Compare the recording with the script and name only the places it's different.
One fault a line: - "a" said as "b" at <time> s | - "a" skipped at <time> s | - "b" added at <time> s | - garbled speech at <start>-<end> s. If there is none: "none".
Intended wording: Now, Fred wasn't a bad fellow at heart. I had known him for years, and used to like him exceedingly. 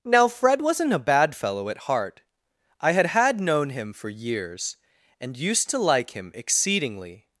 - "had" added at 3.1 s